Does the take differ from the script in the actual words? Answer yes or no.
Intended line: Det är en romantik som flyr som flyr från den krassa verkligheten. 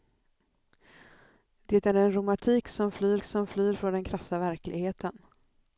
no